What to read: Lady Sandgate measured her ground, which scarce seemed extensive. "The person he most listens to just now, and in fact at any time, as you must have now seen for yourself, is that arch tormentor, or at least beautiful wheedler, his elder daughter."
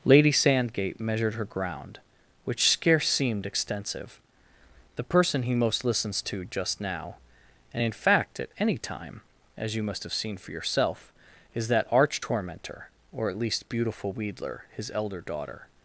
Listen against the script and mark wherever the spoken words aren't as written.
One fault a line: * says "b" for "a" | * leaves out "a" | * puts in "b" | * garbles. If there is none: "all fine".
* leaves out "now"